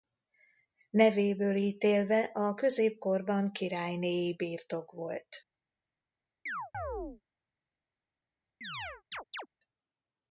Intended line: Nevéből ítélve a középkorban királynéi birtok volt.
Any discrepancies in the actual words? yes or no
no